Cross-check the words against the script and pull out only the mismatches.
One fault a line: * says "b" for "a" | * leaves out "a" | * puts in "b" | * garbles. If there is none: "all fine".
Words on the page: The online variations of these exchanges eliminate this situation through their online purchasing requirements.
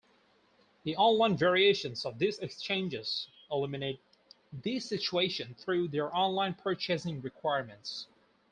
all fine